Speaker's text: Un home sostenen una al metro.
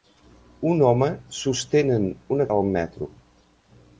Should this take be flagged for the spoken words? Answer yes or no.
no